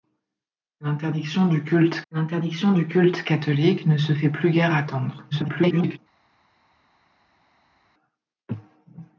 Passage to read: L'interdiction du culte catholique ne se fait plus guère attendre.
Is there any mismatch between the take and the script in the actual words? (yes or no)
yes